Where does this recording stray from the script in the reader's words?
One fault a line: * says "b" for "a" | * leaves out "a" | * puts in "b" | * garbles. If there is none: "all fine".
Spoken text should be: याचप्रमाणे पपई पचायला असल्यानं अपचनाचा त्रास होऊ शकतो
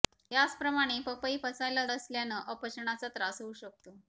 all fine